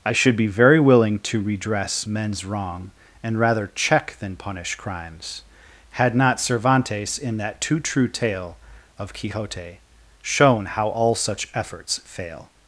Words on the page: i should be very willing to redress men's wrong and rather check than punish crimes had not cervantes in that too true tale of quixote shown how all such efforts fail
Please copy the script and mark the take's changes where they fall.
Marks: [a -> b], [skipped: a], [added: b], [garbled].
i should be very willing to redress men's wrong and rather check than punish crimes had not cervantes in that too true tale of quixote shown how all such efforts fail